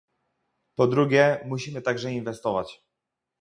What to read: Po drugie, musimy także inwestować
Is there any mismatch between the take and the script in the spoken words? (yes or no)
no